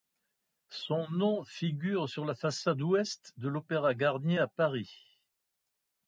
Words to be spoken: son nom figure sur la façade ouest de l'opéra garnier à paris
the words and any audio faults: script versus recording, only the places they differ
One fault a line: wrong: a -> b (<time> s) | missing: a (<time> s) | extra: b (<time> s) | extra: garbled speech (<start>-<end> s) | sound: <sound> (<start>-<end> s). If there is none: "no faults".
no faults